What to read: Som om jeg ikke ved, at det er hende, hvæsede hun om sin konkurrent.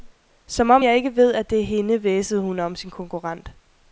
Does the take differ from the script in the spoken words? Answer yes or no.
no